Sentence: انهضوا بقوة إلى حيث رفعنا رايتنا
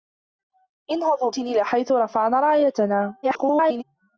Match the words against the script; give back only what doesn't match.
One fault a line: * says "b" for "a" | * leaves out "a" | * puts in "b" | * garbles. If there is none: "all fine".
* leaves out "بقوة"
* garbles